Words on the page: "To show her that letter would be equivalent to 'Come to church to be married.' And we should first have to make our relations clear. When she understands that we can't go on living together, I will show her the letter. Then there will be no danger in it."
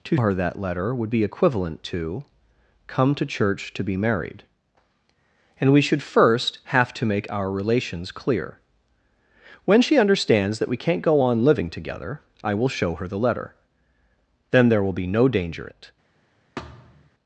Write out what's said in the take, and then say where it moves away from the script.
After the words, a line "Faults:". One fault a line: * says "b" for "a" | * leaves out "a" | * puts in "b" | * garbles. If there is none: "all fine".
"To her that letter would be equivalent to 'Come to church to be married.' And we should first have to make our relations clear. When she understands that we can't go on living together, I will show her the letter. Then there will be no danger it."
Faults:
* leaves out "show"
* leaves out "in"